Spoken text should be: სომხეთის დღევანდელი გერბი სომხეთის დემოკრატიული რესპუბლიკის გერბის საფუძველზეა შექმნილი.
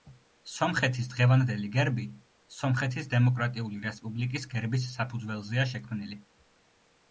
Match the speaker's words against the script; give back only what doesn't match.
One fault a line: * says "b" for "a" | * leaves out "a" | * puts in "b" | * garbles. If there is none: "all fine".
all fine